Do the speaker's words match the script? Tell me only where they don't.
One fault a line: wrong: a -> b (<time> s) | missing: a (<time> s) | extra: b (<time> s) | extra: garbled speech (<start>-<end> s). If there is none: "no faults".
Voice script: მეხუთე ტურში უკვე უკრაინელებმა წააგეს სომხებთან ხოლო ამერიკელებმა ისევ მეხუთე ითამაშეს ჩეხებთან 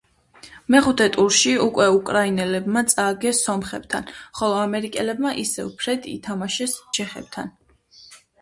wrong: მეხუთე -> ფრედ (5.8 s)